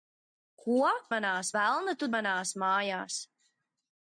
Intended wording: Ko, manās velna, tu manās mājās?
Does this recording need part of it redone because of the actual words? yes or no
no